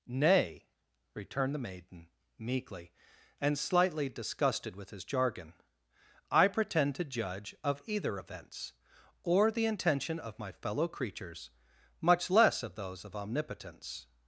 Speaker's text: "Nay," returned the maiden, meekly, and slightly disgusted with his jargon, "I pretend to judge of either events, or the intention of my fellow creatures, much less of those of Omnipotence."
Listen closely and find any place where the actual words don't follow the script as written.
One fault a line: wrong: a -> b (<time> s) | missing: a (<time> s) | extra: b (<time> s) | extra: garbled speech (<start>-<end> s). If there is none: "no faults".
no faults